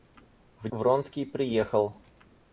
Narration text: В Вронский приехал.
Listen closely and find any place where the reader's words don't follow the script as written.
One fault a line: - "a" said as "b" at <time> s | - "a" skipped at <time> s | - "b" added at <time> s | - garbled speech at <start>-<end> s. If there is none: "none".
none